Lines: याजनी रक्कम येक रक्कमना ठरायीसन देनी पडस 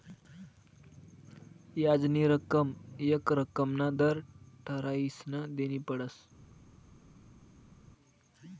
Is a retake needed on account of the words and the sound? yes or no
yes